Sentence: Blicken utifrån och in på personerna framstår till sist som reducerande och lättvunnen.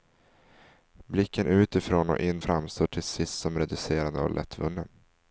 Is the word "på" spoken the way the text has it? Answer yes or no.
no